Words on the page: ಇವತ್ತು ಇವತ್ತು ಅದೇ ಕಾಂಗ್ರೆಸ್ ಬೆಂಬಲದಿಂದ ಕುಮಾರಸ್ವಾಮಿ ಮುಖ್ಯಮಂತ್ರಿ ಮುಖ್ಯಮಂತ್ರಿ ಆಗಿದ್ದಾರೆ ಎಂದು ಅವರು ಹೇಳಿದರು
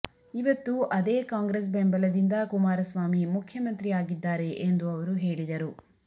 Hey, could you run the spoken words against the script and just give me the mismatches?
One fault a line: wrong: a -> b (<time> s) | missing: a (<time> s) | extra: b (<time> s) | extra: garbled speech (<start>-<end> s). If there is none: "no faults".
missing: ಇವತ್ತು (0.7 s)
missing: ಮುಖ್ಯಮಂತ್ರಿ (3.9 s)